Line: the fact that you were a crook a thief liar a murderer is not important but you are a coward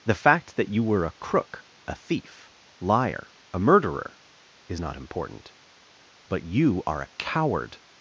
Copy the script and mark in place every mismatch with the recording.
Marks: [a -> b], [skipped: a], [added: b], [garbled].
the fact that you were a crook a thief liar a murderer is not important but you are a coward